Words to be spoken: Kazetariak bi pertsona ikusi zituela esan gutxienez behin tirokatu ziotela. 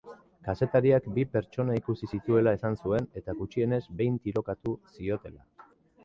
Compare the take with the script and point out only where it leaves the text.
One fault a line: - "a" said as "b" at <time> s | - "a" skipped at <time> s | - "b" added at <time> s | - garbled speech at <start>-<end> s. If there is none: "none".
- "zuen eta" added at 2.8 s